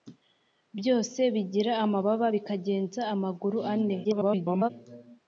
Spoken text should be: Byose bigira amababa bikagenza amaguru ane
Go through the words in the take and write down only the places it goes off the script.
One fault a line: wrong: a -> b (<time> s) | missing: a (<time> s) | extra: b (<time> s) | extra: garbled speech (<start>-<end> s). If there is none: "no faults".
extra: garbled speech (4.0-4.7 s)